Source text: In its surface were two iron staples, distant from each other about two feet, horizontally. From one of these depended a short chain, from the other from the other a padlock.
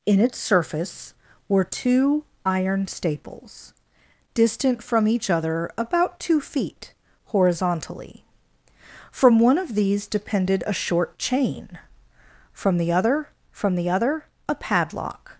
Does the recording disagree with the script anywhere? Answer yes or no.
no